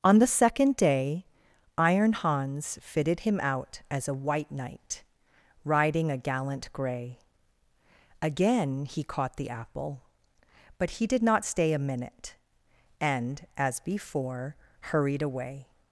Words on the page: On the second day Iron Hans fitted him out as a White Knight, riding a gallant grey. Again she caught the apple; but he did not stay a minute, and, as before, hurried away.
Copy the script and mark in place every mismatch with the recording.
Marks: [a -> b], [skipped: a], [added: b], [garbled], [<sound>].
On the second day Iron Hans fitted him out as a White Knight, riding a gallant grey. Again [she -> he] caught the apple; but he did not stay a minute, and, as before, hurried away.